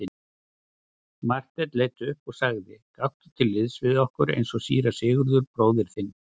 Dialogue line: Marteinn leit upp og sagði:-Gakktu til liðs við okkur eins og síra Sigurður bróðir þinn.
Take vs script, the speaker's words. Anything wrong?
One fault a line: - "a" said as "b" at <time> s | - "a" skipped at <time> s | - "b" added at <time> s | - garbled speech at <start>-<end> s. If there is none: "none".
none